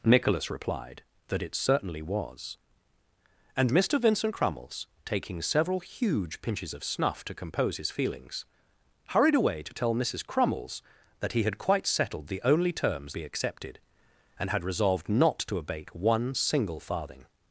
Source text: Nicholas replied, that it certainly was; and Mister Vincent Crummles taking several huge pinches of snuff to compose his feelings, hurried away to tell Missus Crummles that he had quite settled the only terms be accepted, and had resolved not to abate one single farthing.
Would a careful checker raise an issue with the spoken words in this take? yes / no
no